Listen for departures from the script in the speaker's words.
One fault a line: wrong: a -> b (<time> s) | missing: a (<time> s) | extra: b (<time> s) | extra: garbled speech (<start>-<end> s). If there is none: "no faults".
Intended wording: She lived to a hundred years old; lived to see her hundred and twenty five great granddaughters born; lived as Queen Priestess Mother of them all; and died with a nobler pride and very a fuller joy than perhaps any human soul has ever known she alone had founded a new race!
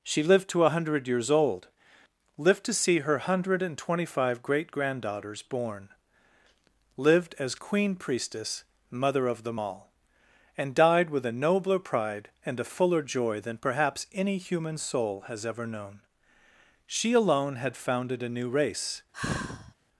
missing: very (12.6 s)